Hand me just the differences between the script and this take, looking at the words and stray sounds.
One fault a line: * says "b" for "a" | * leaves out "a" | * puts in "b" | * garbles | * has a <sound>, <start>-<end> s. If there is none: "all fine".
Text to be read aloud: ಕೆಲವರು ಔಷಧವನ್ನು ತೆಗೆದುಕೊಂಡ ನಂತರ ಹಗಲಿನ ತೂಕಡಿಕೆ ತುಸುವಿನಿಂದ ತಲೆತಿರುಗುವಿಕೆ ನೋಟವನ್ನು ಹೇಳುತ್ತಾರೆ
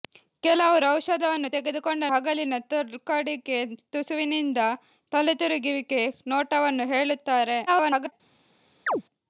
* leaves out "ನಂತರ"
* garbles
* has a chirp, 8.9-9.0 s